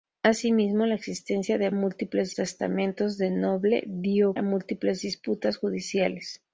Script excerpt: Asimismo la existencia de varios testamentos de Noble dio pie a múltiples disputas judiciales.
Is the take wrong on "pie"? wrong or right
wrong